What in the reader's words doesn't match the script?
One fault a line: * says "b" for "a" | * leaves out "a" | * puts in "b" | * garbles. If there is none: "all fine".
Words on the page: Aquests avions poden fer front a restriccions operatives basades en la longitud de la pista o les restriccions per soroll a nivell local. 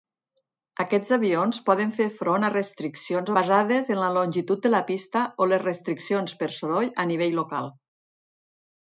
* leaves out "operatives"